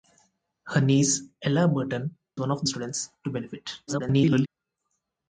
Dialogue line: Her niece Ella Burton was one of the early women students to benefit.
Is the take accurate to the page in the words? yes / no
no